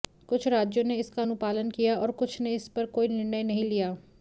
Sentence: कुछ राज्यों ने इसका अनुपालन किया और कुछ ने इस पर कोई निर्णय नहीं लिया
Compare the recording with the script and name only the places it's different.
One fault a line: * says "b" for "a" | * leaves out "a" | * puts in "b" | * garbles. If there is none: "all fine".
all fine